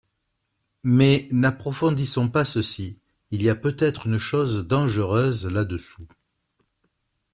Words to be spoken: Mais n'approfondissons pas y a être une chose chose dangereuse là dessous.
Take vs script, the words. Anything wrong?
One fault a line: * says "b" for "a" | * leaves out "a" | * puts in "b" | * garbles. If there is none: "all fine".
* puts in "ceci il"
* puts in "peut"
* leaves out "chose"